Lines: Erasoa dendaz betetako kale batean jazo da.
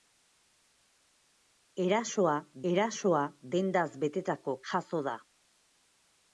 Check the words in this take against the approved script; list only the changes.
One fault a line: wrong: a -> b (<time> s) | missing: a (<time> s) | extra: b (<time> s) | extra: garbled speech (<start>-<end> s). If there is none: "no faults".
extra: erasoa (2.7 s)
missing: kale batean (4.6 s)